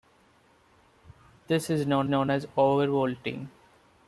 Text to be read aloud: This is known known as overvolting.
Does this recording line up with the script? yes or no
yes